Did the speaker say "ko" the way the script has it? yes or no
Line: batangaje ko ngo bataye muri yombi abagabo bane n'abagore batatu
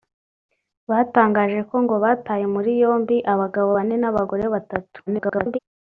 yes